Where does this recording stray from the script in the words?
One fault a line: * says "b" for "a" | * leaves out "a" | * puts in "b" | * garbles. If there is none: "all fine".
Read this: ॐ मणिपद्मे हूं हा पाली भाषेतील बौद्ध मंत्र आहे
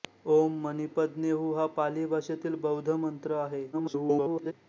* garbles